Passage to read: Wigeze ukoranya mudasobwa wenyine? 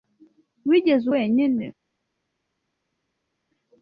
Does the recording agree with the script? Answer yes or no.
no